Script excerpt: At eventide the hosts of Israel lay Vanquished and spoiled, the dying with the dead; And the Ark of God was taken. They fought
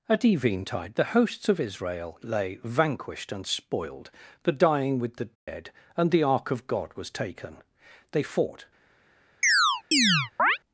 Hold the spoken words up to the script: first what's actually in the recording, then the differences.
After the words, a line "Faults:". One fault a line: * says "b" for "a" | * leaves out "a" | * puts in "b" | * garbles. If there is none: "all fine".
At eventide the hosts of Israel lay Vanquished and spoiled, the dying with the dead; And the Ark of God was taken. They fought
Faults:
all fine